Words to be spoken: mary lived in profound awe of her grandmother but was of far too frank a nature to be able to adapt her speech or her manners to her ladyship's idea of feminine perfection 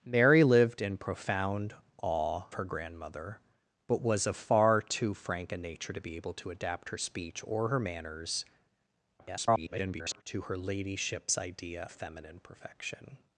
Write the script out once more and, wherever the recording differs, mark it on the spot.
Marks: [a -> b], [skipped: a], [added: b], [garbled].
mary lived in profound awe [skipped: of] her grandmother but was of far too frank a nature to be able to adapt her speech or her manners [garbled] to her ladyship's idea [skipped: of] feminine perfection